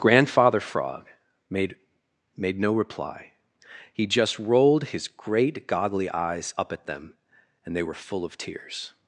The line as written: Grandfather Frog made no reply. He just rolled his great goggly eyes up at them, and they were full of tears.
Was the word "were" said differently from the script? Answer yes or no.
no